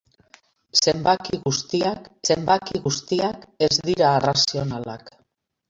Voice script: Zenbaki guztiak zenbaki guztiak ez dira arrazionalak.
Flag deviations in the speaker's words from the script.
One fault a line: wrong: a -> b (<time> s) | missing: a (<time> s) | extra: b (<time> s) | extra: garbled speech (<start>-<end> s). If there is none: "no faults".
no faults